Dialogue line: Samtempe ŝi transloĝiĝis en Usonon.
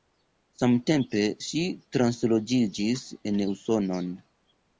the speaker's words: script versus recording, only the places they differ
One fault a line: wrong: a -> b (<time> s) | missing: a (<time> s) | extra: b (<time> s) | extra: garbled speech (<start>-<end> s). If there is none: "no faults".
no faults